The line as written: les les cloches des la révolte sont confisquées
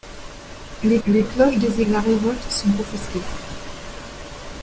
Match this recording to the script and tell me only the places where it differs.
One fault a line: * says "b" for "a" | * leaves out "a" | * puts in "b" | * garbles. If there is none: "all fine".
all fine